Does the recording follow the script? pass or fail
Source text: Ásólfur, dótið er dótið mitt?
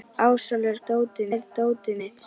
pass